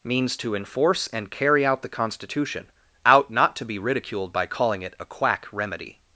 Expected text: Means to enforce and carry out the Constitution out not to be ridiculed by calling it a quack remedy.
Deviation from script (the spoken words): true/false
false